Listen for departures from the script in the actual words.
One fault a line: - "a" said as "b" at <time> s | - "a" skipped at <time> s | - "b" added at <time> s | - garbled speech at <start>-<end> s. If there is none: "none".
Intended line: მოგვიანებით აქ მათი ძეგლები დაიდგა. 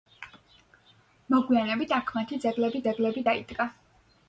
- "ძეგლები" added at 2.9 s